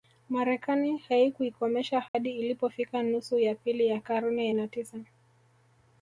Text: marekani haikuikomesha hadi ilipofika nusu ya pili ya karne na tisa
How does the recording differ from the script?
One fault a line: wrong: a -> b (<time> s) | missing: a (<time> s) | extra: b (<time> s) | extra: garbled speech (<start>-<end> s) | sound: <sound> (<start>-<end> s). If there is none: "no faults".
sound: dropout (2.1-2.1 s)